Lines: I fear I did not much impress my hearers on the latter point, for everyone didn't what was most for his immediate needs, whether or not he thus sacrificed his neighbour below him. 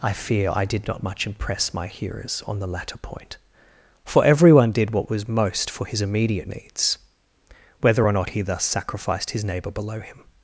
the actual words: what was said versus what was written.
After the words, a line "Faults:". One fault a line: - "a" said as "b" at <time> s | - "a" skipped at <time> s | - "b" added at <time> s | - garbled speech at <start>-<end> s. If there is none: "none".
I fear I did not much impress my hearers on the latter point, for everyone did what was most for his immediate needs, whether or not he thus sacrificed his neighbour below him.
Faults:
- "didn't" said as "did" at 4.7 s